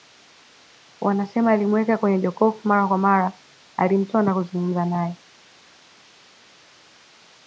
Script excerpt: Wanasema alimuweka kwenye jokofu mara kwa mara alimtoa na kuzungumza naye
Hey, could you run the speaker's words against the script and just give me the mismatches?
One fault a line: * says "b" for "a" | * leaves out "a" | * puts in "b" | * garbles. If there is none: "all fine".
all fine